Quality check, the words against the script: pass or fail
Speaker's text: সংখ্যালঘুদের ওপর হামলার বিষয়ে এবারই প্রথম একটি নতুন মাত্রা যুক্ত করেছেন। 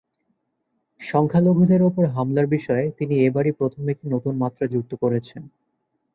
fail